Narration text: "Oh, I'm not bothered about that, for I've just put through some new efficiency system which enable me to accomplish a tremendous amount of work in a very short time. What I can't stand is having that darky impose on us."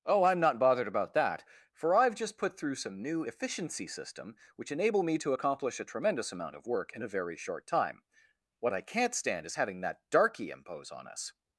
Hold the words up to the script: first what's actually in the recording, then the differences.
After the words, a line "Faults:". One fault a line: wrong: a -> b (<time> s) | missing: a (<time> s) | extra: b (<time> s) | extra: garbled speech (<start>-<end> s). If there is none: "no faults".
"Oh, I'm not bothered about that, for I've just put through some new efficiency system which enable me to accomplish a tremendous amount of work in a very short time. What I can't stand is having that darky impose on us."
Faults:
no faults